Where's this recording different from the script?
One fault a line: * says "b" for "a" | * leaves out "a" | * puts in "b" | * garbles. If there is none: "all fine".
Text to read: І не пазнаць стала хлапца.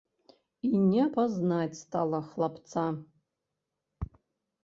all fine